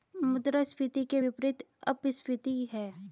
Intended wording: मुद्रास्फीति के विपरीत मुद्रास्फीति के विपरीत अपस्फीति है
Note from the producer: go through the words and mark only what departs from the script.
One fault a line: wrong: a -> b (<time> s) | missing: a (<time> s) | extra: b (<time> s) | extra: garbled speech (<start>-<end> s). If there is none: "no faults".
missing: मुद्रास्फीति के विपरीत (1.6 s)